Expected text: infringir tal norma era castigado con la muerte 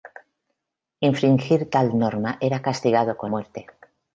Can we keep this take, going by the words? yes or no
no